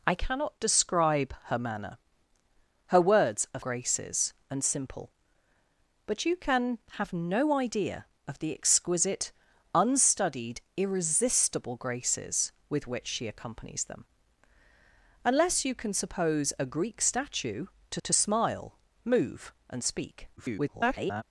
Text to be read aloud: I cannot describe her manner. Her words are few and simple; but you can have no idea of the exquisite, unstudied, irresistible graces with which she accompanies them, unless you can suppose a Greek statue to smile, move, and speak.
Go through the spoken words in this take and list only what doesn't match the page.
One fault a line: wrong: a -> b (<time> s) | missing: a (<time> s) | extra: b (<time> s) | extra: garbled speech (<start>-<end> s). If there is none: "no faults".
wrong: few -> graces (3.6 s)
extra: to (18.0 s)
extra: garbled speech (20.4-21.2 s)